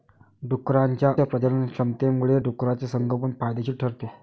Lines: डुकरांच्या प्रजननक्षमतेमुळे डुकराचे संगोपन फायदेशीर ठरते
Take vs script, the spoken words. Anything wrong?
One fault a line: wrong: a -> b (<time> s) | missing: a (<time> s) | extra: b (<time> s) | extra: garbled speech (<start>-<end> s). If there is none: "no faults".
no faults